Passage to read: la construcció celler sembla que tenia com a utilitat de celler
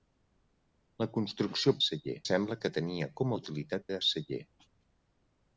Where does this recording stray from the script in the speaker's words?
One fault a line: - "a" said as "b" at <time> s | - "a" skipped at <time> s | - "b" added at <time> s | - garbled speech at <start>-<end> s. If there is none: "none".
none